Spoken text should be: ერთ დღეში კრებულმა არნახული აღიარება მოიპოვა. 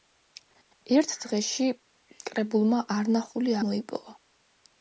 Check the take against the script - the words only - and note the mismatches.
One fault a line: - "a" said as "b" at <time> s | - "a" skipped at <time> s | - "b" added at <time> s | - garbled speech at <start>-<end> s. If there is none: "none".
- "აღიარება" skipped at 3.5 s